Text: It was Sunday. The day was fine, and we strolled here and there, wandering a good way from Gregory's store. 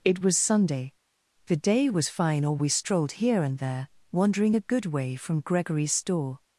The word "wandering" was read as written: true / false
true